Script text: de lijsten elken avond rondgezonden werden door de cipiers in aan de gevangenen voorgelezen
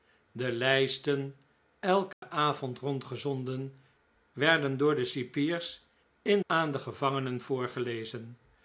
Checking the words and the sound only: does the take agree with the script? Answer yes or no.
no